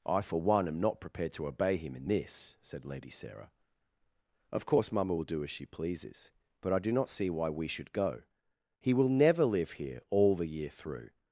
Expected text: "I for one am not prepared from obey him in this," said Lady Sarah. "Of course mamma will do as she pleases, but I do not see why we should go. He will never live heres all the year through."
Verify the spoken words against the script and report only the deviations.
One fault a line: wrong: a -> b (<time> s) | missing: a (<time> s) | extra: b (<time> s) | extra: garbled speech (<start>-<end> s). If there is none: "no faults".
wrong: from -> to (1.3 s)
wrong: heres -> here (9.7 s)